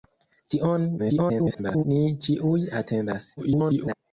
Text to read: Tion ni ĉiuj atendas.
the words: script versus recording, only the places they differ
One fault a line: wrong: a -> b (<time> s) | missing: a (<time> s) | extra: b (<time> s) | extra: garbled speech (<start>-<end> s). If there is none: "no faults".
extra: garbled speech (1.0-1.9 s)
extra: garbled speech (3.4-3.9 s)